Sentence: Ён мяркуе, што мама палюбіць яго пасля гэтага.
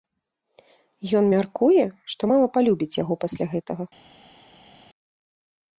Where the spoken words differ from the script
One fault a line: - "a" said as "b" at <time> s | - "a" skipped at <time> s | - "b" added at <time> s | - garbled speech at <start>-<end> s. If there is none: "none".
none